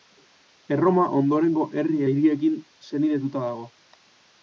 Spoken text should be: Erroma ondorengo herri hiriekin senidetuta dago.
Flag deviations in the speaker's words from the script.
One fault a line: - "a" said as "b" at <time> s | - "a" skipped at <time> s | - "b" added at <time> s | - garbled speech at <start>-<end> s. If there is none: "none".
none